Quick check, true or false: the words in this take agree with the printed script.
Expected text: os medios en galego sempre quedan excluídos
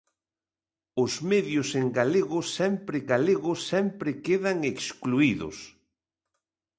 false